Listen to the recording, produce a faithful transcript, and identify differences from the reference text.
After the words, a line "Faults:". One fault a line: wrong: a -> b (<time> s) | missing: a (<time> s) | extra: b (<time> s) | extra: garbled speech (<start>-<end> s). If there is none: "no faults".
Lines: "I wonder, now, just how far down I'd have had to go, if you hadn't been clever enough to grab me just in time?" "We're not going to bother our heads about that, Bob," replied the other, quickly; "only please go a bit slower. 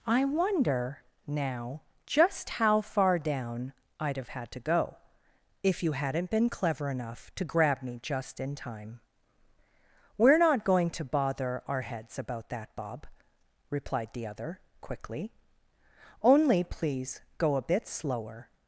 "I wonder, now, just how far down I'd have had to go, if you hadn't been clever enough to grab me just in time?" "We're not going to bother our heads about that, Bob," replied the other, quickly; "only please go a bit slower.
Faults:
no faults